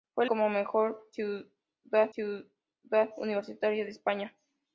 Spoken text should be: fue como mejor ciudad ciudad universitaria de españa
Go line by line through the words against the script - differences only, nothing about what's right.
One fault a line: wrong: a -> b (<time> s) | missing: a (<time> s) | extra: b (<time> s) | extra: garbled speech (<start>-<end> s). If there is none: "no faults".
no faults